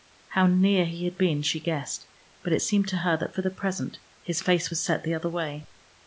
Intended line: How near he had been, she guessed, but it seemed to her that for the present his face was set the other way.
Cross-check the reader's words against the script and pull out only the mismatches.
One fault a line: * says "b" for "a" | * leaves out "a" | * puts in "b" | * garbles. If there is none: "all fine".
all fine